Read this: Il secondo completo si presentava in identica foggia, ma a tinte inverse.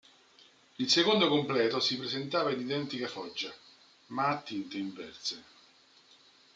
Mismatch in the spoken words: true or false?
false